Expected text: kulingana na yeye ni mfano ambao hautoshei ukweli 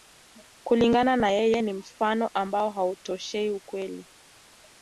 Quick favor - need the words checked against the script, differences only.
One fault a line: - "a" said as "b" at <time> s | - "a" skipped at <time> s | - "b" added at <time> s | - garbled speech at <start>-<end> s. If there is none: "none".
none